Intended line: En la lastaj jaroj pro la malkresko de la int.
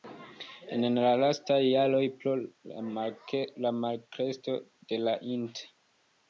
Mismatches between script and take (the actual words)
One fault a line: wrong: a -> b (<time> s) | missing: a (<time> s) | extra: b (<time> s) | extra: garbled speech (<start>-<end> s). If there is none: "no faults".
no faults